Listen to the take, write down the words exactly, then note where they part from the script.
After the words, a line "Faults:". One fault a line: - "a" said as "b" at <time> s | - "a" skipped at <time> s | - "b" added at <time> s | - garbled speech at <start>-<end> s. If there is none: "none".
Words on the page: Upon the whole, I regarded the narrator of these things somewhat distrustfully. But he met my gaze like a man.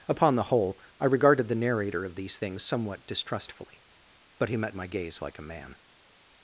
Upon the whole, I regarded the narrator of these things somewhat distrustfully. But he met my gaze like a man.
Faults:
none